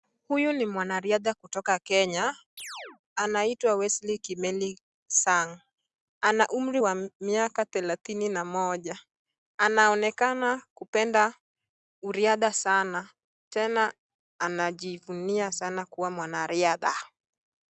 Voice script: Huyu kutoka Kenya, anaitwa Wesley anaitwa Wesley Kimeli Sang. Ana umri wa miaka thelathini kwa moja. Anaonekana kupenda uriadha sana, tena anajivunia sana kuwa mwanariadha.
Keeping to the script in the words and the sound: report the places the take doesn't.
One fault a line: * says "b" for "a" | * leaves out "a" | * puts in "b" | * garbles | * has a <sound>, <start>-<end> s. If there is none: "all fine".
* puts in "ni mwanariadha"
* has a chirp, 2.6-3.0 s
* leaves out "anaitwa Wesley"
* says "na" for "kwa"